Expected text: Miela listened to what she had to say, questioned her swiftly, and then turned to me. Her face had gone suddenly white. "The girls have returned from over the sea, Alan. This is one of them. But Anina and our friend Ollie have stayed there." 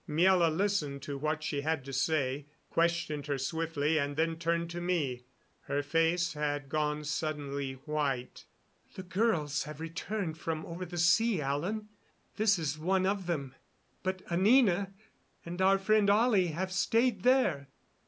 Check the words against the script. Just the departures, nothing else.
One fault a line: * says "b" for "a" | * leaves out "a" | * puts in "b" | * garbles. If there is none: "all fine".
all fine